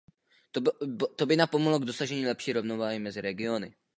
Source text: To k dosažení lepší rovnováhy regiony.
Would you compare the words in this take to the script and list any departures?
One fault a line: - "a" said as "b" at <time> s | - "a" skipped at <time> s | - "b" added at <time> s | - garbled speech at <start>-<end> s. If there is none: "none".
- "by napomohlo" added at 1.2 s
- "mezi" added at 3.0 s